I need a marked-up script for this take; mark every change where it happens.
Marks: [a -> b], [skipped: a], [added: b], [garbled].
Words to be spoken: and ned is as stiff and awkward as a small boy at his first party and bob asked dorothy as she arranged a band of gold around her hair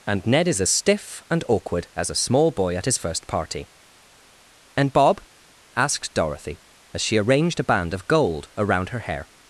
and ned is as stiff and awkward as a small boy at his first party and bob asked dorothy as she arranged a band of gold around her hair